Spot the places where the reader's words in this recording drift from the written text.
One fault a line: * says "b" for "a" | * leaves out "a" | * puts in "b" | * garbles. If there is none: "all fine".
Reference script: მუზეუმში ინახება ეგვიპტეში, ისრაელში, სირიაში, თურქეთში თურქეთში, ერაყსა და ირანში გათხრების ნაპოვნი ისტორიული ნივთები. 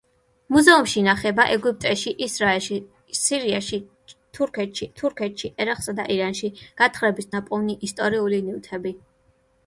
all fine